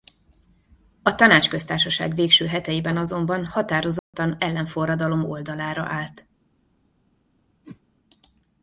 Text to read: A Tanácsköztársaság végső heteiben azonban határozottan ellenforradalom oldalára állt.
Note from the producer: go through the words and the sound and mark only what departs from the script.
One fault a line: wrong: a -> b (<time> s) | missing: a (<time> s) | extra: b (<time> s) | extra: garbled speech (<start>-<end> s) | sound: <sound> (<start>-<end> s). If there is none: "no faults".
sound: dropout (4.0-4.1 s)
sound: whoosh (7.6-7.8 s)